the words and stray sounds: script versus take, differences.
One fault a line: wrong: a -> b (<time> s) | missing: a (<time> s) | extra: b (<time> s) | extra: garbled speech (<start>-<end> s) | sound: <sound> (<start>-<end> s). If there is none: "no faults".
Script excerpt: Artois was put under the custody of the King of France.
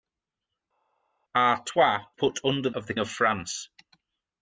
missing: was (2.1 s)
missing: the custody (2.7 s)
missing: King (2.9 s)